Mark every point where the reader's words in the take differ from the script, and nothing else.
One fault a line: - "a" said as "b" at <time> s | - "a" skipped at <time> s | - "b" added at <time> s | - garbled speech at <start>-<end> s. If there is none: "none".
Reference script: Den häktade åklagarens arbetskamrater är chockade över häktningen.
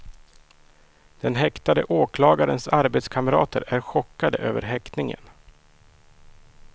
none